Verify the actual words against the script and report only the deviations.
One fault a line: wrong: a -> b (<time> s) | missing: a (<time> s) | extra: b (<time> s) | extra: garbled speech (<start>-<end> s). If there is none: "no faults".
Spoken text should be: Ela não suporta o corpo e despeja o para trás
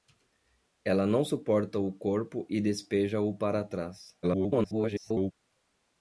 extra: garbled speech (4.2-5.3 s)